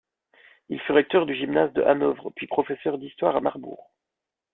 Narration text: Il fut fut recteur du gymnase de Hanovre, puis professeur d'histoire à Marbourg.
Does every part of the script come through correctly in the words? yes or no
no